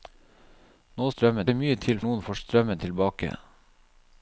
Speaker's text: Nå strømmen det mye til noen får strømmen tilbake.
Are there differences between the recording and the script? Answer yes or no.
no